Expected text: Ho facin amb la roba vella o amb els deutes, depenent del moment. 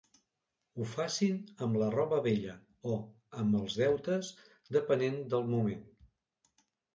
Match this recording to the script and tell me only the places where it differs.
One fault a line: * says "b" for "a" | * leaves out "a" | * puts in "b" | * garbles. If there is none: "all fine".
all fine